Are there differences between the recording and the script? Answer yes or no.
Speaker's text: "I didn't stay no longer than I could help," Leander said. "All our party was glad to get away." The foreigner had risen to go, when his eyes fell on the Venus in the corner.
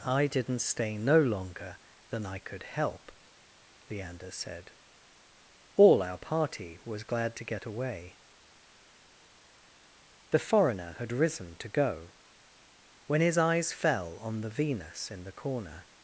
no